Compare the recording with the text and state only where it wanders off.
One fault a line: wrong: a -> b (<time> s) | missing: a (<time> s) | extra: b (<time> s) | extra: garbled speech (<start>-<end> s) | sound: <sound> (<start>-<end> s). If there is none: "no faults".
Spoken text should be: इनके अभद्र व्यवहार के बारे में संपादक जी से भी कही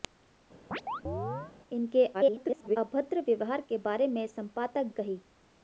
sound: chirp (0.7-1.5 s)
extra: garbled speech (2.1-2.8 s)
missing: जी से भी (4.9 s)